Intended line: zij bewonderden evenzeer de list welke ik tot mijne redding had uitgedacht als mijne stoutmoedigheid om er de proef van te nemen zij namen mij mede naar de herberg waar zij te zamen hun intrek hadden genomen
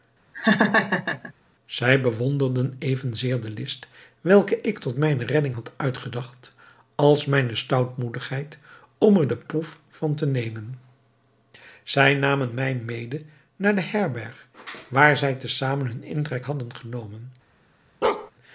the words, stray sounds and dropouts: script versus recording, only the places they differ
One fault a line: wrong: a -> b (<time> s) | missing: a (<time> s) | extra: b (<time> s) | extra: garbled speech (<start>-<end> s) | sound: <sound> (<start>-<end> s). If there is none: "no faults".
sound: laugh (0.3-1.3 s)
sound: bark (18.0-18.3 s)